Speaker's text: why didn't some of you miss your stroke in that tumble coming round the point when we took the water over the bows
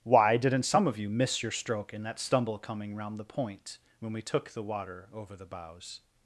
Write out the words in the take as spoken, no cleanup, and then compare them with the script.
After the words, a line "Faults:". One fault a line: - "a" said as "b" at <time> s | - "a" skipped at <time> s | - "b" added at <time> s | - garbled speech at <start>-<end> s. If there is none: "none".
why didn't some of you miss your stroke in that stumble coming round the point when we took the water over the bows
Faults:
- "tumble" said as "stumble" at 2.2 s